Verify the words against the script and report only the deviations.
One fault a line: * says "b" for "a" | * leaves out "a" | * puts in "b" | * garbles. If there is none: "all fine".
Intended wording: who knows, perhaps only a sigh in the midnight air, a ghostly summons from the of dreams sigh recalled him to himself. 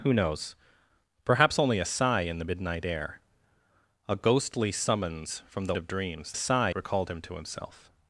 all fine